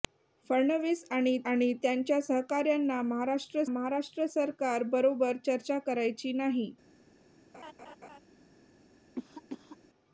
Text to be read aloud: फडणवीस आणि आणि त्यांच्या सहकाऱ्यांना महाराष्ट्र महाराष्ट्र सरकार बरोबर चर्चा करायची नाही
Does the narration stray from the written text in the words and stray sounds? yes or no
yes